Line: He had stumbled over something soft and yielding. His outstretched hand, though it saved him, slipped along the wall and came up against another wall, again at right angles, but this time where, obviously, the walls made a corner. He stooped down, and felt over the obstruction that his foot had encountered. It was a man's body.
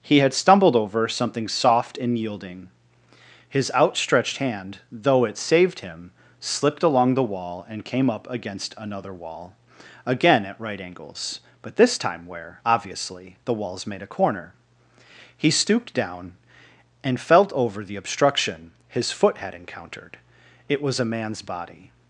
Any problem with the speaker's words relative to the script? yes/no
yes